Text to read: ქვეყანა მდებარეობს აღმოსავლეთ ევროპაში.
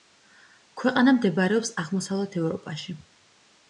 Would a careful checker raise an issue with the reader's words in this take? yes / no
no